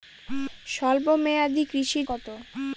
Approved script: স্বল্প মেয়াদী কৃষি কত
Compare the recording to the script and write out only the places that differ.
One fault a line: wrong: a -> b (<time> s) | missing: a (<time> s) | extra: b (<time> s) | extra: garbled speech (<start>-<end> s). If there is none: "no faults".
no faults